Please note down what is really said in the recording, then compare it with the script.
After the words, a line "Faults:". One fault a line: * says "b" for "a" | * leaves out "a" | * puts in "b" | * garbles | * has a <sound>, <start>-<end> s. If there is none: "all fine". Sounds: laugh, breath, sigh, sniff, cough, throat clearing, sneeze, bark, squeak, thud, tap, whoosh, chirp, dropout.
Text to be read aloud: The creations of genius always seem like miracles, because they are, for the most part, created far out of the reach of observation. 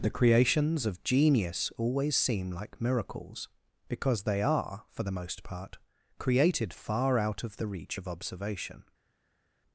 The creations of genius always seem like miracles, because they are, for the most part, created far out of the reach of observation.
Faults:
all fine